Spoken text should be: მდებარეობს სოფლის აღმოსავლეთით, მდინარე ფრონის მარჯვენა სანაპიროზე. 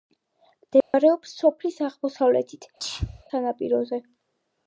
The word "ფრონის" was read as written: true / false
false